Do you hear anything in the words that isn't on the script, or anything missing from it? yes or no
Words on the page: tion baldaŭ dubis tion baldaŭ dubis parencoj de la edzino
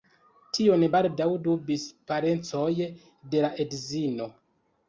yes